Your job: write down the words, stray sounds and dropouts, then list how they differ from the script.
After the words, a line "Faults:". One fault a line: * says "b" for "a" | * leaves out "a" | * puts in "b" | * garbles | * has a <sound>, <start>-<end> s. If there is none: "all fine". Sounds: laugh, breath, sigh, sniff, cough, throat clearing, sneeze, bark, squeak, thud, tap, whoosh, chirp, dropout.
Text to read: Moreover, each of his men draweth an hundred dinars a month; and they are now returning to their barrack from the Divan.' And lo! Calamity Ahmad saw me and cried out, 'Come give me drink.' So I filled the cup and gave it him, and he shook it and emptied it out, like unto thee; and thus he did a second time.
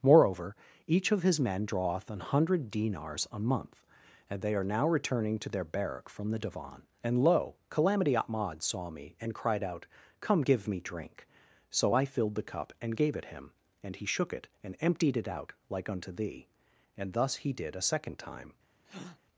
Moreover, each of his men draweth an hundred dinars a month; and they are now returning to their barrack from the Divan.' And lo! Calamity Ahmad saw me and cried out, 'Come give me drink.' So I filled the cup and gave it him, and he shook it and emptied it out, like unto thee; and thus he did a second time.
Faults:
* has a breath, 18.8-19.2 s